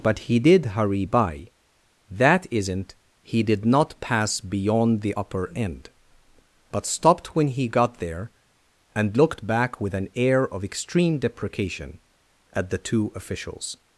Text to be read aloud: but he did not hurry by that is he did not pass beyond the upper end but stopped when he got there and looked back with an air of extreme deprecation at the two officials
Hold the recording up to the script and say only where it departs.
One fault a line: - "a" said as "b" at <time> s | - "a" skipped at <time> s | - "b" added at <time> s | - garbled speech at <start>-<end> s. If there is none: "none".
- "not" skipped at 0.7 s
- "is" said as "isn't" at 2.5 s